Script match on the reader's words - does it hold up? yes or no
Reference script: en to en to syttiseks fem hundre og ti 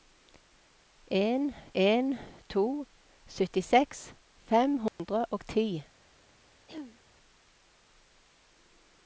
no